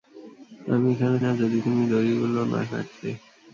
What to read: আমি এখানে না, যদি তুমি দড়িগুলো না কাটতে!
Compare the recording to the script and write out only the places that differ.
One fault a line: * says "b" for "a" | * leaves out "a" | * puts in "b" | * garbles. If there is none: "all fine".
all fine